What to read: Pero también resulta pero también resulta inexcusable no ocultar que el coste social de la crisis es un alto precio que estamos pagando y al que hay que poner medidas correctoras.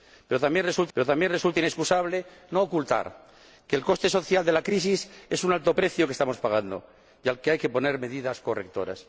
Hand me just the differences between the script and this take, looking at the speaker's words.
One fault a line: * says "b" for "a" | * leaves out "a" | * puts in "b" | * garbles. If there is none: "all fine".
all fine